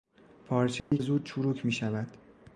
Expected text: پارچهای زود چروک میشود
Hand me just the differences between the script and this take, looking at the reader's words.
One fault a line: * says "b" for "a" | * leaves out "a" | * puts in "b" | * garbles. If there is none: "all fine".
all fine